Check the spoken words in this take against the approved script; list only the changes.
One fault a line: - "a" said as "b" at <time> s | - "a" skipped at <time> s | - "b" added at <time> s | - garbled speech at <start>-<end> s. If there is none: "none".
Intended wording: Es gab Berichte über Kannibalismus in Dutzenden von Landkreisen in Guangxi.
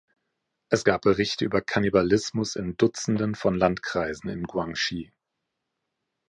none